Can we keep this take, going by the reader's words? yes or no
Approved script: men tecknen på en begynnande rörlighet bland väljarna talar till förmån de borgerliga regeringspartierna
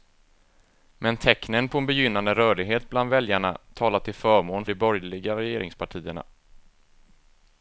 yes